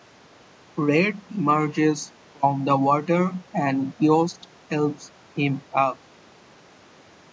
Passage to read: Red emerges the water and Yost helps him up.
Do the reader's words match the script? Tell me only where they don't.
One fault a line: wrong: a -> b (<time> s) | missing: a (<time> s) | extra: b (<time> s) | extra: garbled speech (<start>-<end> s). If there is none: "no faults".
extra: from (2.3 s)